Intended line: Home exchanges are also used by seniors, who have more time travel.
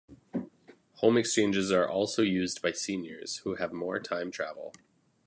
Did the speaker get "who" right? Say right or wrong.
right